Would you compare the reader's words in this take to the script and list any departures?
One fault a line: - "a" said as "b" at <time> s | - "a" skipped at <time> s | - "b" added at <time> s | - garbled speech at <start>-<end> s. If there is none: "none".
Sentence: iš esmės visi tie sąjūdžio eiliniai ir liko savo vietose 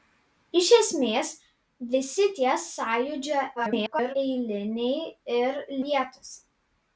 - garbled speech at 3.6-4.2 s
- "liko savo" skipped at 5.6 s